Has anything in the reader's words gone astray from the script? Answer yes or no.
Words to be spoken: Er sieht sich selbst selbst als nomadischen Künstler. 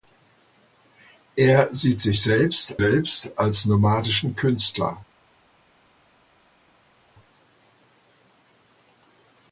no